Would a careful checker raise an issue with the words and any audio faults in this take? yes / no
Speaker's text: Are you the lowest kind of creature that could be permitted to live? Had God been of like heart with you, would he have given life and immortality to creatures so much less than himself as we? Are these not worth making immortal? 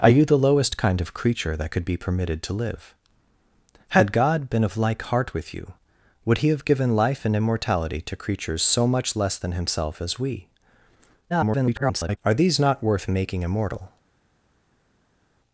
yes